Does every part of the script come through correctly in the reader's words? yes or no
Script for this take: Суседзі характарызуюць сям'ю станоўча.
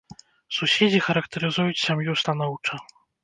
yes